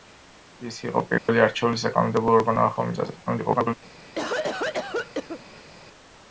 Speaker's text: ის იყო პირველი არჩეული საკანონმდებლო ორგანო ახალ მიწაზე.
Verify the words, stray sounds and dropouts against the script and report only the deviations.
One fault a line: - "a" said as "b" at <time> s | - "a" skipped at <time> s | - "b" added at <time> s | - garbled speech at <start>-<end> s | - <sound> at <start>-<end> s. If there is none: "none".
- dropout at 1.2-1.3 s
- garbled speech at 3.3-3.7 s
- cough at 4.2-5.7 s